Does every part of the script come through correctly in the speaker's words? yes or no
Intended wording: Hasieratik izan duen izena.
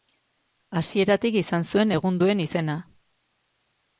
no